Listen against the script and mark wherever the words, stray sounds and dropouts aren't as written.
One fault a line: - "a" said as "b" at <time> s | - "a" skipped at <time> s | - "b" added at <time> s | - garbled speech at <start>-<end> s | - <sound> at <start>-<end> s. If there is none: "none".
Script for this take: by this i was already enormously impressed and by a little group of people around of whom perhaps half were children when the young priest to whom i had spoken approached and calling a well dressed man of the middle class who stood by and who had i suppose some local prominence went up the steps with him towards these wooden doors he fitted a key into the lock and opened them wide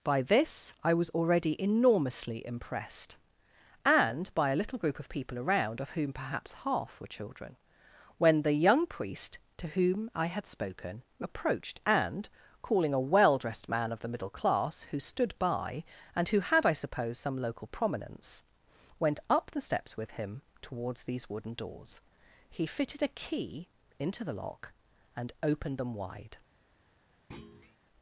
- thud at 27.3-27.8 s